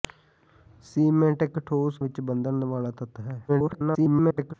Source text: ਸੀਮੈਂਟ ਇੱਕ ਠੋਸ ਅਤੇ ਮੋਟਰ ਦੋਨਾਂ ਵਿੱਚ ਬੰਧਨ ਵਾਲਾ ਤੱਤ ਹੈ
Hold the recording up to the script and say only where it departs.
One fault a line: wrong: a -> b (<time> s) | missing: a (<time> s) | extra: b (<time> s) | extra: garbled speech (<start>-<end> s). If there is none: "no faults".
missing: ਅਤੇ ਮੋਟਰ ਦੋਨਾਂ (2.0 s)
extra: garbled speech (3.5-4.5 s)